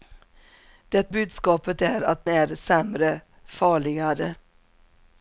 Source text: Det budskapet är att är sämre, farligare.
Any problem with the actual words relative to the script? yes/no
no